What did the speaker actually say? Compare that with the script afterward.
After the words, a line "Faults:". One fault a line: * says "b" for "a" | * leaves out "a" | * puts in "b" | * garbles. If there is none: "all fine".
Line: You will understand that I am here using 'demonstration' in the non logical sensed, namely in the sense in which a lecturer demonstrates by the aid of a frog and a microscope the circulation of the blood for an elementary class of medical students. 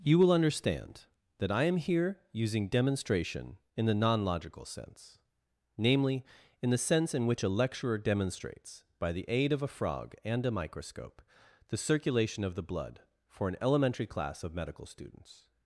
You will understand that I am here using 'demonstration' in the non logical sense, namely in the sense in which a lecturer demonstrates by the aid of a frog and a microscope the circulation of the blood for an elementary class of medical students.
Faults:
* says "sense" for "sensed"